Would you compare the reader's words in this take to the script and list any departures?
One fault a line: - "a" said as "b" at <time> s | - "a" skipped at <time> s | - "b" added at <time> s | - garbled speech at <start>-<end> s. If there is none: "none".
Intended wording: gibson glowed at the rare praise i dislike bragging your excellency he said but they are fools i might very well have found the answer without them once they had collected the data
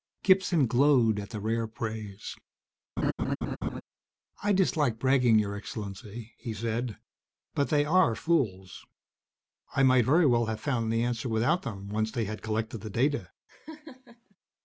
none